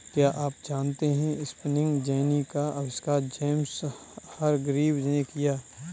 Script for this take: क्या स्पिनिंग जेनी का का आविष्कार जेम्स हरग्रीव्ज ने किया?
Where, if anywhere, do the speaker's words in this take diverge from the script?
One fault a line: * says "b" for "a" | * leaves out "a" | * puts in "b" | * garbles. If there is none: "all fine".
* puts in "आप जानते है"
* leaves out "का"